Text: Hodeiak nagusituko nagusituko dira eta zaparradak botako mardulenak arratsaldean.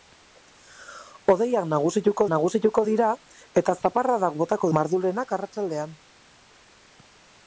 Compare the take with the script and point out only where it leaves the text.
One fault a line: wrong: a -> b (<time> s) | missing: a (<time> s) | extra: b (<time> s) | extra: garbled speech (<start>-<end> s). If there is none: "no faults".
no faults